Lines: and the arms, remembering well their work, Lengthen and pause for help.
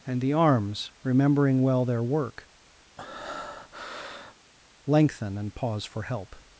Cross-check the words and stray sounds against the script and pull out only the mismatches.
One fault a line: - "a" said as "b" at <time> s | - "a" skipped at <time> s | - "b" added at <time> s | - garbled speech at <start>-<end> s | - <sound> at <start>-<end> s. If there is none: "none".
- breath at 3.0-4.4 s